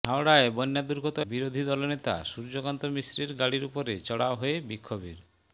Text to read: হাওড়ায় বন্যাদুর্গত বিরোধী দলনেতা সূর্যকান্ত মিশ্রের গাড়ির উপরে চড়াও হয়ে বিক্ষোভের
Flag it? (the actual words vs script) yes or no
no